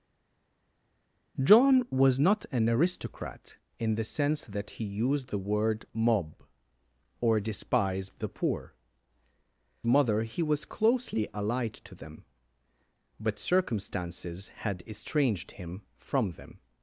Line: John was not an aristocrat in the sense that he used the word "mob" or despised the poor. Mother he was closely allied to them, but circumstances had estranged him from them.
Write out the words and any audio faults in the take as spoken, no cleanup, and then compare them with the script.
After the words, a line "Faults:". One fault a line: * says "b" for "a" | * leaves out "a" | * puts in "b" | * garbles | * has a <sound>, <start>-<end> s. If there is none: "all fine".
John was not an aristocrat in the sense that he used the word "mob" or despised the poor. Mother he was closely allied to them, but circumstances had estranged him from them.
Faults:
all fine